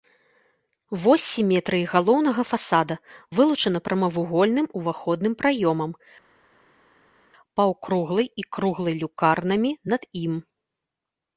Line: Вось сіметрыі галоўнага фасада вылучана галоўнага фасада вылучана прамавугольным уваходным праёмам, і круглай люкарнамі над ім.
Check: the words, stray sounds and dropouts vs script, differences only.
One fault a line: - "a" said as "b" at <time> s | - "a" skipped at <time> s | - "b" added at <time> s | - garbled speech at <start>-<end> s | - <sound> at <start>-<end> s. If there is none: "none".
- "галоўнага фасада вылучана" skipped at 3.8 s
- "паўкруглай" added at 7.6 s